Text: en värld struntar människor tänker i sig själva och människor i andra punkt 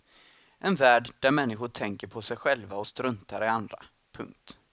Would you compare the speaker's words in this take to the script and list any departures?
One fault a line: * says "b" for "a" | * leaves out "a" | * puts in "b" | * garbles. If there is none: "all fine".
* says "där" for "struntar"
* says "på" for "i"
* says "struntar" for "människor"